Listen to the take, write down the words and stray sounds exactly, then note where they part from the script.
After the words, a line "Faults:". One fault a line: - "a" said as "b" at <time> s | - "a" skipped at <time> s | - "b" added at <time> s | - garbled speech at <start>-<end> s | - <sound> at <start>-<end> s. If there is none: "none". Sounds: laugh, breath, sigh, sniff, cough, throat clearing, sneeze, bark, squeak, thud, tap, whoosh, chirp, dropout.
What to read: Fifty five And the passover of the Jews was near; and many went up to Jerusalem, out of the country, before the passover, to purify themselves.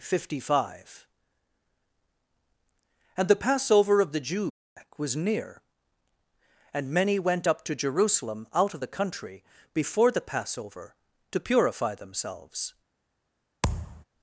Fifty five And the passover of the Jews was near; and many went up to Jerusalem, out of the country, before the passover, to purify themselves.
Faults:
- thud at 13.6-14.0 s